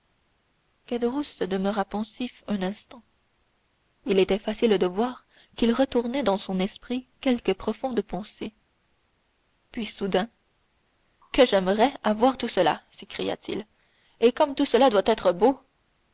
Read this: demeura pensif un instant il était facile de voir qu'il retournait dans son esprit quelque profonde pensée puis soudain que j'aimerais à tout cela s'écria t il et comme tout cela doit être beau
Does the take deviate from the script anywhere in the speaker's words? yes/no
yes